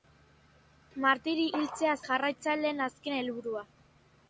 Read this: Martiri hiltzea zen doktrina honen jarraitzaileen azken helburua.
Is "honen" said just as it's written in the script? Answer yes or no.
no